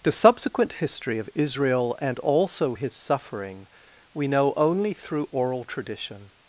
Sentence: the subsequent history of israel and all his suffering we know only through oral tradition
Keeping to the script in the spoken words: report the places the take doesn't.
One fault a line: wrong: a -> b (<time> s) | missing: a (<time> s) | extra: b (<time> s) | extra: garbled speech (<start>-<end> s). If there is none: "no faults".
wrong: all -> also (2.2 s)